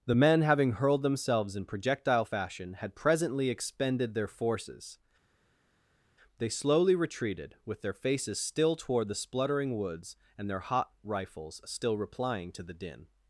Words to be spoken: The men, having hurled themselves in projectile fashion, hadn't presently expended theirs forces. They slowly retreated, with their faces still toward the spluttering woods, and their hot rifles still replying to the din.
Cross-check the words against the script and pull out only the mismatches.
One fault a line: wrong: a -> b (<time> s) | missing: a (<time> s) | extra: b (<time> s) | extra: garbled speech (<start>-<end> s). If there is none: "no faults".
wrong: hadn't -> had (2.7 s)
wrong: theirs -> their (4.1 s)